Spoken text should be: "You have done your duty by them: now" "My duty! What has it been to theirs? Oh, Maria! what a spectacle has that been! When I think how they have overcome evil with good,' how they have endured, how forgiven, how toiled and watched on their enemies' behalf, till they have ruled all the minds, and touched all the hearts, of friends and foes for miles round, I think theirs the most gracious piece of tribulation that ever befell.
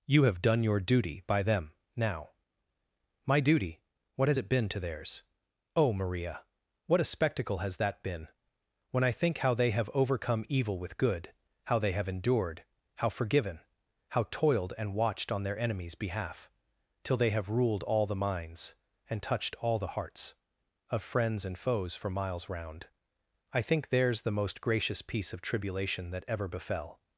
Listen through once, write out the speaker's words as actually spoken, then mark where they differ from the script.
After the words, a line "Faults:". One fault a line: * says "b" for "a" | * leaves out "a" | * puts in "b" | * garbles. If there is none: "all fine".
"You have done your duty by them: now" "My duty! What has it been to theirs? Oh, Maria! what a spectacle has that been! When I think how they have overcome evil with good,' how they have endured, how forgiven, how toiled and watched on their enemies' behalf, till they have ruled all the minds, and touched all the hearts, of friends and foes for miles round, I think theirs the most gracious piece of tribulation that ever befell.
Faults:
all fine